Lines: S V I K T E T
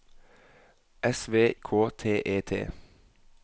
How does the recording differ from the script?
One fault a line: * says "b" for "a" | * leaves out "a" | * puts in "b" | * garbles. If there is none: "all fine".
* leaves out "I"